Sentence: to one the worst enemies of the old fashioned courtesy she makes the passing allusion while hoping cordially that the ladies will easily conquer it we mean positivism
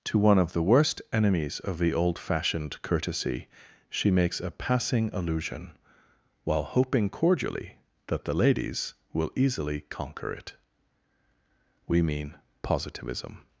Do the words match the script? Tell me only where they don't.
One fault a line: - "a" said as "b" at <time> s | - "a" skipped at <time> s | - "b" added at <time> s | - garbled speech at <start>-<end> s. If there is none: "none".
- "of" added at 0.4 s
- "the" said as "a" at 4.4 s